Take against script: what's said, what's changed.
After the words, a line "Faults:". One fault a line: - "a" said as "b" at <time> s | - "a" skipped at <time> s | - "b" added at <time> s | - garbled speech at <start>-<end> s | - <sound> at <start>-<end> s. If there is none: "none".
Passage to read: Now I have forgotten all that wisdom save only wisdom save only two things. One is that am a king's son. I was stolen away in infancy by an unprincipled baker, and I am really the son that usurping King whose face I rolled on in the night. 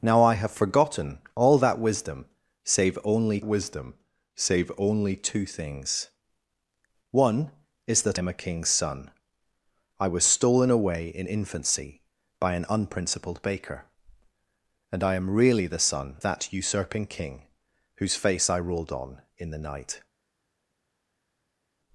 Now I have forgotten all that wisdom save only wisdom save only two things. One is that am a king's son. I was stolen away in infancy by an unprincipled baker, and I am really the son that usurping King whose face I rolled on in the night.
Faults:
none